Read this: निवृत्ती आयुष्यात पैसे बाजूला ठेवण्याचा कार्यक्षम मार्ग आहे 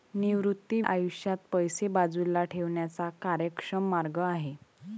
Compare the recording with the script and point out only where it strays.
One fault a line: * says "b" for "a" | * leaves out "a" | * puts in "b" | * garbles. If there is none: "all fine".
all fine